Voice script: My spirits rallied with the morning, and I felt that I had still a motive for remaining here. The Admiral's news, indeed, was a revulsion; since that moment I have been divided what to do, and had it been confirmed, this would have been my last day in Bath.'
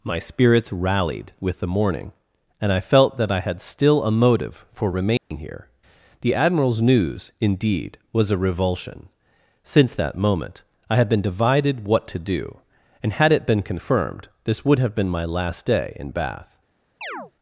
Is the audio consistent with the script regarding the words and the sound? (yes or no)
no